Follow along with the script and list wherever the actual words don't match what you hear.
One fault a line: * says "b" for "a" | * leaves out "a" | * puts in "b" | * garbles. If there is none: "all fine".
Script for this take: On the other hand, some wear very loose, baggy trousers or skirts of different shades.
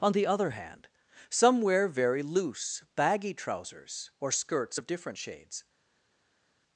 all fine